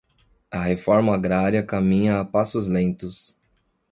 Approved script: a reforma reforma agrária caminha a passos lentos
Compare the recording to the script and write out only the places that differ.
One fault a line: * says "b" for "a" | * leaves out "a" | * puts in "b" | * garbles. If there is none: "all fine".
* leaves out "reforma"